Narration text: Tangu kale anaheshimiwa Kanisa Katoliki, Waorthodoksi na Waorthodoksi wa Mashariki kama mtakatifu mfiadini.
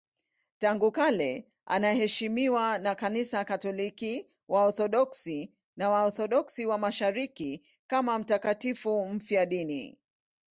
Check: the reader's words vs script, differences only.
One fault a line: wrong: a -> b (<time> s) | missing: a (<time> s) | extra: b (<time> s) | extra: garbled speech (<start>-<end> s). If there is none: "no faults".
extra: na (2.8 s)